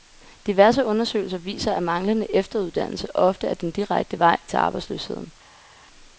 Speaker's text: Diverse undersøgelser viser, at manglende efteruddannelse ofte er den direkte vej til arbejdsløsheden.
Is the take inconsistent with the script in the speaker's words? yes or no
no